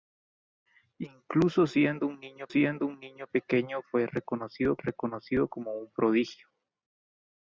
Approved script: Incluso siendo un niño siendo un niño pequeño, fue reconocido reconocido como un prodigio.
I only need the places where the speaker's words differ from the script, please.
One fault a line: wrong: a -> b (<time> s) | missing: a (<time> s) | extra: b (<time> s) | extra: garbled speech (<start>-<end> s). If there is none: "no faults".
no faults